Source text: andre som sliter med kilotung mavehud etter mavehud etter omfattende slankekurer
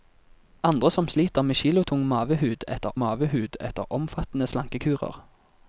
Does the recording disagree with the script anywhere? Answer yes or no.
no